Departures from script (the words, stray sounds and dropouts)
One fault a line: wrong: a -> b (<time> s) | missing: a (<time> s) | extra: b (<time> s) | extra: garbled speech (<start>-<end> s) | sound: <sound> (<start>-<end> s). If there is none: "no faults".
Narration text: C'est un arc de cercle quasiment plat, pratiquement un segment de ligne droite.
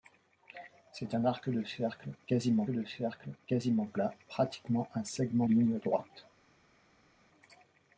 extra: de cercle quasiment (2.7 s)
missing: de (5.5 s)